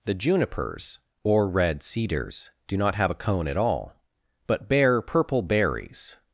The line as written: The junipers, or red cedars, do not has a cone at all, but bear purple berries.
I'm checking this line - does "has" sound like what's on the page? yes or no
no